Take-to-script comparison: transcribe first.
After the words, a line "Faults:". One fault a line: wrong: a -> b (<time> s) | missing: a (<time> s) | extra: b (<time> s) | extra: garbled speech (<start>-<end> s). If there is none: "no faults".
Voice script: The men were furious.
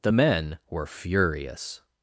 The men were furious.
Faults:
no faults